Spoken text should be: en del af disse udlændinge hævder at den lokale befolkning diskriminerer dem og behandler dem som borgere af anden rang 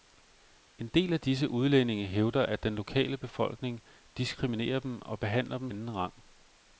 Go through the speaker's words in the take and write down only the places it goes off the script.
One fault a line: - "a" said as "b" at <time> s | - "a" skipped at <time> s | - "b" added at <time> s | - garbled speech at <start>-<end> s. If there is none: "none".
- "som borgere af" skipped at 5.7 s